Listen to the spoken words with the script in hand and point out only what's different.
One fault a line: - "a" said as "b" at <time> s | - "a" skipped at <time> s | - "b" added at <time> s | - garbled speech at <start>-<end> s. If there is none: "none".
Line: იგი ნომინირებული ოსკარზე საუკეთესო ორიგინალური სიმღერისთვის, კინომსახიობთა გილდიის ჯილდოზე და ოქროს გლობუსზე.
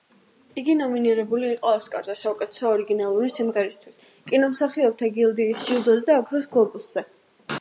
- "იყო" added at 1.6 s